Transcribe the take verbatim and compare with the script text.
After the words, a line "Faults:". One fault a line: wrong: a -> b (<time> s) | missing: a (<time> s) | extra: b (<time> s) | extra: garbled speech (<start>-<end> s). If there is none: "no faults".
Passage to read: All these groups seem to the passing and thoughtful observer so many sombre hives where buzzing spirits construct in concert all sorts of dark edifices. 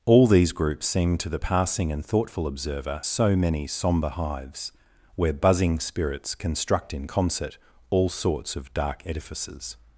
All these groups seem to the passing and thoughtful observer so many sombre hives where buzzing spirits construct in concert all sorts of dark edifices.
Faults:
no faults